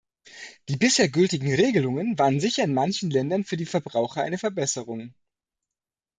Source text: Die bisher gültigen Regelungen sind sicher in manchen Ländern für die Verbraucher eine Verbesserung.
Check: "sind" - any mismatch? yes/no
yes